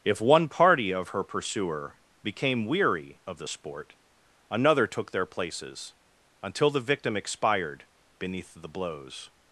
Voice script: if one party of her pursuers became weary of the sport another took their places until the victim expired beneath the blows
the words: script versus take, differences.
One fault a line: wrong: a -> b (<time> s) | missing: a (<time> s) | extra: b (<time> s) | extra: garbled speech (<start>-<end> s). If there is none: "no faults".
wrong: pursuers -> pursuer (1.2 s)